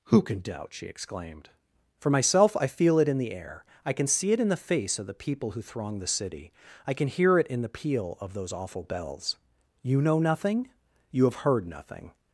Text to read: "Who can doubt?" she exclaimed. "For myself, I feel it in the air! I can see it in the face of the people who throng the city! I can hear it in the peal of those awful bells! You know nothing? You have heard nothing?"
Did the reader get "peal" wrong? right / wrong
right